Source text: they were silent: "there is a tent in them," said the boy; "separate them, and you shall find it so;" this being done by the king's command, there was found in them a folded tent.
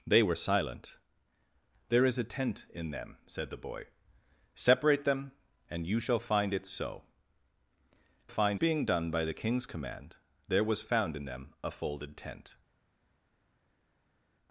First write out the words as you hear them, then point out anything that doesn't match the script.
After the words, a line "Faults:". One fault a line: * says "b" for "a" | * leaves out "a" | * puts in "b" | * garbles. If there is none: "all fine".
they were silent: "there is a tent in them," said the boy; "separate them, and you shall find it so;" find being done by the king's command, there was found in them a folded tent.
Faults:
* says "find" for "this"